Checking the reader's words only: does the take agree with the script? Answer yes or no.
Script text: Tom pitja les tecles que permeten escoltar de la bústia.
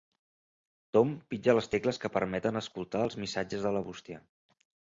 no